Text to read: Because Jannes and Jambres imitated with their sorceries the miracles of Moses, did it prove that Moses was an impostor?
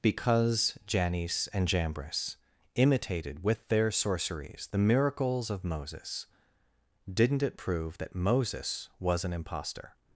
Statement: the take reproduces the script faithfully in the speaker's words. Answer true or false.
false